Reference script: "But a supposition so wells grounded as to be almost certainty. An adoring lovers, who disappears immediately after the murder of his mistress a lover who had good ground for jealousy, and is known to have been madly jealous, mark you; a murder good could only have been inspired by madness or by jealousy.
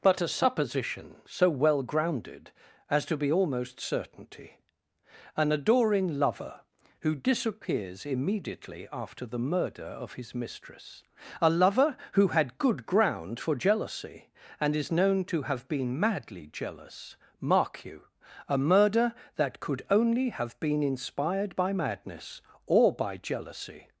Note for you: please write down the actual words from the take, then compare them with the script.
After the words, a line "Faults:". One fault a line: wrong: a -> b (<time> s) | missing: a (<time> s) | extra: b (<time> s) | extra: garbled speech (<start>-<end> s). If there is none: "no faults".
"But a supposition so well grounded as to be almost certainty. An adoring lover, who disappears immediately after the murder of his mistress a lover who had good ground for jealousy, and is known to have been madly jealous, mark you; a murder that could only have been inspired by madness or by jealousy.
Faults:
wrong: wells -> well (1.5 s)
wrong: lovers -> lover (6.2 s)
wrong: good -> that (19.4 s)